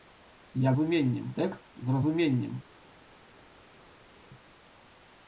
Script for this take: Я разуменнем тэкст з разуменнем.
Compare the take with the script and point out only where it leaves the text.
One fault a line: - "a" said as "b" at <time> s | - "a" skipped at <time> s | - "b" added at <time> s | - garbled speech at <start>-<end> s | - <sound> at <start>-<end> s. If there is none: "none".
none